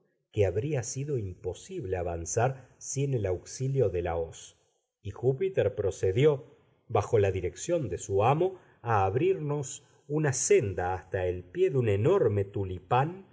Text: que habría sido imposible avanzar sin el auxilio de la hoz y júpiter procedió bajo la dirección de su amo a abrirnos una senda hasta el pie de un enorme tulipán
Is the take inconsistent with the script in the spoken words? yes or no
no